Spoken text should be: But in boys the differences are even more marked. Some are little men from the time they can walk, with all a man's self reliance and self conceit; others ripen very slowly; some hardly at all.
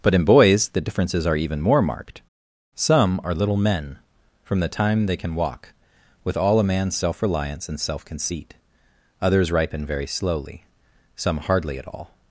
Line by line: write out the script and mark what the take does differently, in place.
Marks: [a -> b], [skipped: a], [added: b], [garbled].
But in boys the differences are even more marked. Some are little men from the time they can walk, with all a man's self reliance and self conceit; others ripen very slowly; some hardly at all.